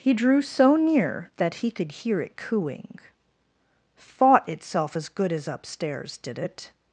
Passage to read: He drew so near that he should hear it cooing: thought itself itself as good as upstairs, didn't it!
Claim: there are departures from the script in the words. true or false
true